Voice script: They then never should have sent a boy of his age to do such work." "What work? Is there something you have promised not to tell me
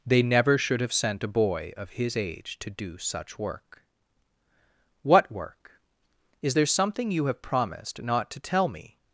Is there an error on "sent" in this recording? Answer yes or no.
no